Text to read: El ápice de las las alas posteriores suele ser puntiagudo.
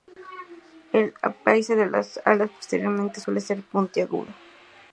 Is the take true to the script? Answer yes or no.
no